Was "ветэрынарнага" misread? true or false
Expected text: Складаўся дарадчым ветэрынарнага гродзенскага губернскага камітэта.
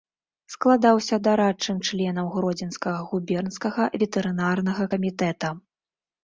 true